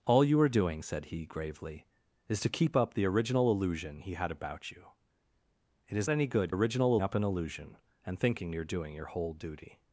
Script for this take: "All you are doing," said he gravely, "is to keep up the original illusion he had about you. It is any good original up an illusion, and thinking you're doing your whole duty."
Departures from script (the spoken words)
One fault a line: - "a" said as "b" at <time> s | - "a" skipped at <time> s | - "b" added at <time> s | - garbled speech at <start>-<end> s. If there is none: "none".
none